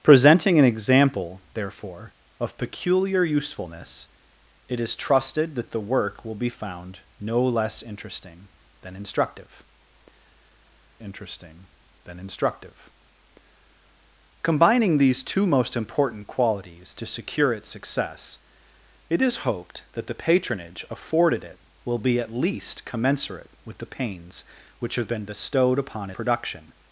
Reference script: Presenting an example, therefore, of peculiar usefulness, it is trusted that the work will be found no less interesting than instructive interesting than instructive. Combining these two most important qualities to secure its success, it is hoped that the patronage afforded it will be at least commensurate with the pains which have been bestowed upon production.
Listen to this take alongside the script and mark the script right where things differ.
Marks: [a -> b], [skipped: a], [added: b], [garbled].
Presenting an example, therefore, of peculiar usefulness, it is trusted that the work will be found no less interesting than instructive interesting than instructive. Combining these two most important qualities to secure its success, it is hoped that the patronage afforded it will be at least commensurate with the pains which have been bestowed upon production.